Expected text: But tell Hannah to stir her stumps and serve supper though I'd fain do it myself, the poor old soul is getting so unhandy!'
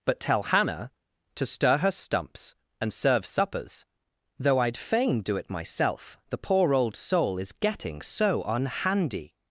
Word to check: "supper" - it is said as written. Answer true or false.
false